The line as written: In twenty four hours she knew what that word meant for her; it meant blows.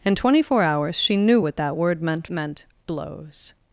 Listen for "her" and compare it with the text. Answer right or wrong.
wrong